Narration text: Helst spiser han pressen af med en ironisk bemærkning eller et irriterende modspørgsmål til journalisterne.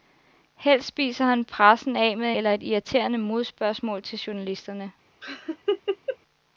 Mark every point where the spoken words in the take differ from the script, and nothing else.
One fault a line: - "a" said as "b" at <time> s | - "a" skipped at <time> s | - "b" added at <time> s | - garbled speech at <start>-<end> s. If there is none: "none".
- "en ironisk bemærkning" skipped at 2.3 s